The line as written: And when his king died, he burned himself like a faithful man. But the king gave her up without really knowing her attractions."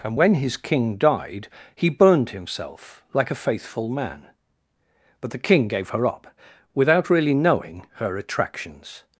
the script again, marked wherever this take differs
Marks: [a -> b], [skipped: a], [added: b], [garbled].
And when his king died, he burned himself like a faithful man. But the king gave her up without really knowing her attractions."